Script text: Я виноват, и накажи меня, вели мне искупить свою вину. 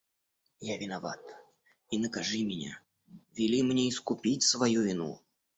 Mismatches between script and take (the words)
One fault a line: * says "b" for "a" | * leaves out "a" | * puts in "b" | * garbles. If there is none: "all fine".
all fine